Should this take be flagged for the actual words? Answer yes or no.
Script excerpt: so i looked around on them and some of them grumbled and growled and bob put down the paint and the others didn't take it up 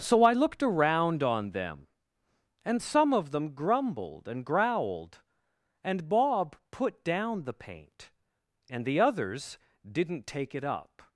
no